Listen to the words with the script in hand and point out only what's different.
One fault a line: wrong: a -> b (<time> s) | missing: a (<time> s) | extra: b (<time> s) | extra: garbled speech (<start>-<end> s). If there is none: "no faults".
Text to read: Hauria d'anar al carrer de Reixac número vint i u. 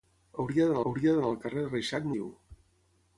extra: hauria d'anar (0.9 s)
missing: número vint (2.1 s)